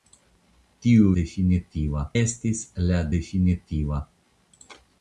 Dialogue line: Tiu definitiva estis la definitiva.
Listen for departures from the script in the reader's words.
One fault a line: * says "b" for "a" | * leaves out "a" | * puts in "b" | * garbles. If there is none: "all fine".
all fine